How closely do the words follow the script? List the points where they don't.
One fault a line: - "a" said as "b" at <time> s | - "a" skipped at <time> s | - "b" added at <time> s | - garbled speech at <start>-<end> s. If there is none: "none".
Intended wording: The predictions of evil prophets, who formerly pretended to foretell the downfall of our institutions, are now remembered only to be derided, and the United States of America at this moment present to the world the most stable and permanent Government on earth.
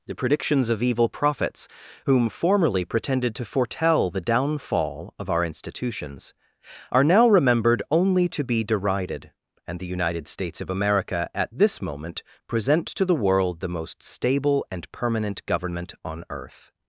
- "who" said as "whom" at 2.0 s